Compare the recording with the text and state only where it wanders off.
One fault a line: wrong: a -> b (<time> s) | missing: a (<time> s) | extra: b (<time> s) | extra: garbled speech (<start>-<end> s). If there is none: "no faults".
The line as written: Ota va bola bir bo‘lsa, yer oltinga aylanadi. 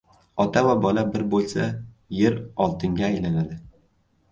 no faults